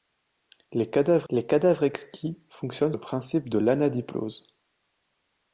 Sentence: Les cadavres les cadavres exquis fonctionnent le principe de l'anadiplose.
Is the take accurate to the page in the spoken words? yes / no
yes